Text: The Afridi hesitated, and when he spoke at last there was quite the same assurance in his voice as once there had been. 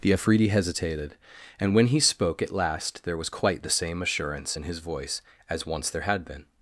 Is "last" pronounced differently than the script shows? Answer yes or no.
no